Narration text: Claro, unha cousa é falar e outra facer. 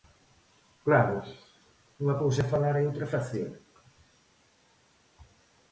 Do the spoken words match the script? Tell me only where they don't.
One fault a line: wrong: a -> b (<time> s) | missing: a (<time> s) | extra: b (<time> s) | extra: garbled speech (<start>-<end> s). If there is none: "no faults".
no faults